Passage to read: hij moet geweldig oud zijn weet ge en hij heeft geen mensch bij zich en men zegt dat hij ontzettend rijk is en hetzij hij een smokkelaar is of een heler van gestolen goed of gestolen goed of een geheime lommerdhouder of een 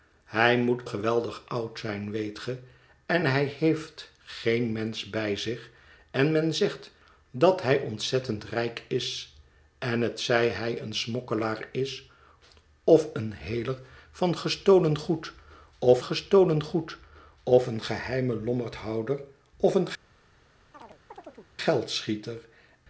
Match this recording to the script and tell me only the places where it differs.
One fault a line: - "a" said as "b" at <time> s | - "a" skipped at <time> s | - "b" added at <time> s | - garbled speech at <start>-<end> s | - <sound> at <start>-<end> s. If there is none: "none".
- chirp at 20.7-21.5 s